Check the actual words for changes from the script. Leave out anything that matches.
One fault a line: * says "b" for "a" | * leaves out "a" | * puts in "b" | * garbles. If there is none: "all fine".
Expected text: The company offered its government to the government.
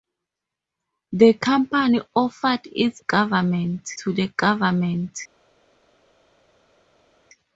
all fine